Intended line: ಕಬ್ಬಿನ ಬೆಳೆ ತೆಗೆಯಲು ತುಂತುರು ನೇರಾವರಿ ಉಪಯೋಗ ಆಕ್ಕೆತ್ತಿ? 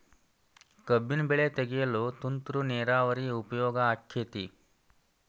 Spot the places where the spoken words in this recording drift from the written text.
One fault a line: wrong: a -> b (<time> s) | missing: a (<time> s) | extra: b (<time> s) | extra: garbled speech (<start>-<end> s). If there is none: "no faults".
no faults